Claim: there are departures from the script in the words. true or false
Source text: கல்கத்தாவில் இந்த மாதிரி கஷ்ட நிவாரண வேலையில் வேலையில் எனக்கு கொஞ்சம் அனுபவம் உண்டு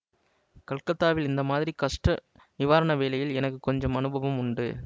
true